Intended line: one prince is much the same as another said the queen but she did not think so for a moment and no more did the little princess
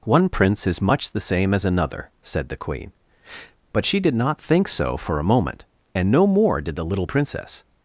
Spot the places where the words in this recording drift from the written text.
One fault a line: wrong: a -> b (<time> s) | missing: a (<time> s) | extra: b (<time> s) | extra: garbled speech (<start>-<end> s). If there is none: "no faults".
no faults